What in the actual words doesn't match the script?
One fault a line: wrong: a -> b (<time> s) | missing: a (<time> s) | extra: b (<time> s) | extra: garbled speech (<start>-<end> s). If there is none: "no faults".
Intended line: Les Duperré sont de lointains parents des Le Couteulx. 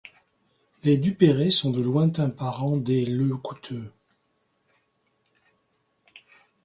no faults